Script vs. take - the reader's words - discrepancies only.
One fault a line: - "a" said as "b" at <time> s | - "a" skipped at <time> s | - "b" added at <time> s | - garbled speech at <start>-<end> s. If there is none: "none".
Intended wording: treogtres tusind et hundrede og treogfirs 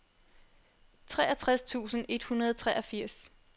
none